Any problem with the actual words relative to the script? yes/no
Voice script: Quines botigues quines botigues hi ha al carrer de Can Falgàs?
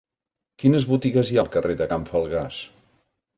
yes